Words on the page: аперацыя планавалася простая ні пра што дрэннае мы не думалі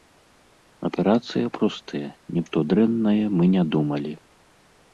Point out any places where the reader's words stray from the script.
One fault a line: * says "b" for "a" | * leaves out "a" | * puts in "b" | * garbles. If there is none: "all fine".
* leaves out "планавалася"
* leaves out "пра"